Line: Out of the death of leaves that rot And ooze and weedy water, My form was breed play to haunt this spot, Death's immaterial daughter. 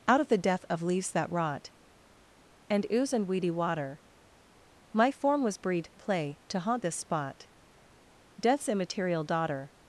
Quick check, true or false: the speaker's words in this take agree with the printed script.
true